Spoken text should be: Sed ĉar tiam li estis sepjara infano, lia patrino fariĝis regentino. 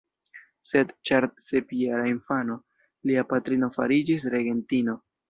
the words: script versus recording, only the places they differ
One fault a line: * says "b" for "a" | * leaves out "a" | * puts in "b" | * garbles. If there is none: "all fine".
* leaves out "tiam li estis"